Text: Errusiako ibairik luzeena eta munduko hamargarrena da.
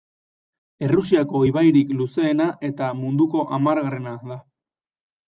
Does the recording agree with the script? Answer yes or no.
yes